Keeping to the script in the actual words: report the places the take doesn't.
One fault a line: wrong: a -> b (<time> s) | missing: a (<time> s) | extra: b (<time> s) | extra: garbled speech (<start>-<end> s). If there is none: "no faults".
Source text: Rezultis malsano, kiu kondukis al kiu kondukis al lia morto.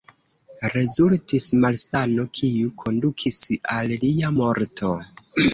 missing: kiu kondukis al (4.0 s)